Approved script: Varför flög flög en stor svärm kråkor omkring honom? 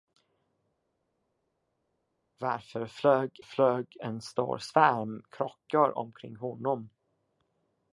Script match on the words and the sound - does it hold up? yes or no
yes